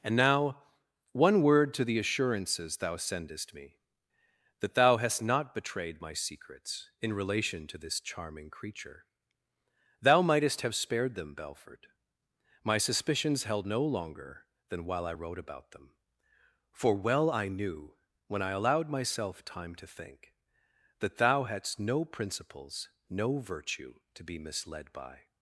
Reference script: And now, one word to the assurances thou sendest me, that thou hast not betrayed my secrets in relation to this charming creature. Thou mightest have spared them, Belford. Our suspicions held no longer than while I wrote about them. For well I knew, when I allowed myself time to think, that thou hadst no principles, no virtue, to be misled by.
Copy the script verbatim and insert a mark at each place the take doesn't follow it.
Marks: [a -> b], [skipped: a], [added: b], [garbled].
And now, one word to the assurances thou sendest me, that thou hast not betrayed my secrets in relation to this charming creature. Thou mightest have spared them, Belford. [Our -> My] suspicions held no longer than while I wrote about them. For well I knew, when I allowed myself time to think, that thou hadst no principles, no virtue, to be misled by.